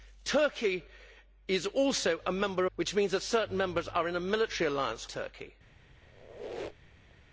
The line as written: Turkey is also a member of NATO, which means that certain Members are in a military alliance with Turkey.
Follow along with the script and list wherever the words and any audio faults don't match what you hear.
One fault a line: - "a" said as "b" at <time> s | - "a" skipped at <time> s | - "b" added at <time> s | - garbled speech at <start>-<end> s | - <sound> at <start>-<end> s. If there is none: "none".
- "of NATO" skipped at 2.6 s
- "with" skipped at 5.1 s
- squeak at 6.0-7.1 s